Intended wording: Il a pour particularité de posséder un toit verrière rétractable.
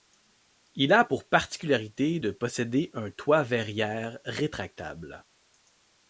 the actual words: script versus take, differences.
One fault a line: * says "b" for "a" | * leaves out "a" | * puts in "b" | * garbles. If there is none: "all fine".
all fine